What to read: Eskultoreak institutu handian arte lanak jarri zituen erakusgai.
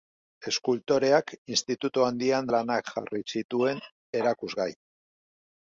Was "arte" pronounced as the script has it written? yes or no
no